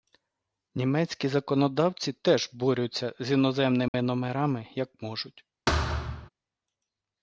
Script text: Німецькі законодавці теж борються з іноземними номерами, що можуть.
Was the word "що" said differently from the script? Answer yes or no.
yes